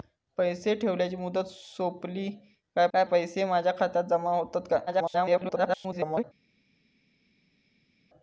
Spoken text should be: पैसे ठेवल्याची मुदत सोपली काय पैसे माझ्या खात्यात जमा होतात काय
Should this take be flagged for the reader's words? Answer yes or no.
yes